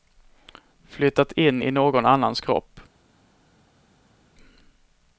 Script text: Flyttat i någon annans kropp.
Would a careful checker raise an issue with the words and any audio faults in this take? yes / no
yes